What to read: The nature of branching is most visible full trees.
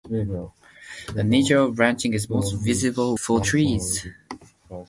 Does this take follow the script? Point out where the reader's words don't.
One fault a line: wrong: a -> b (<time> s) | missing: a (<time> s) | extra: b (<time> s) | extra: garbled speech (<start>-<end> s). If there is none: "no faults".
no faults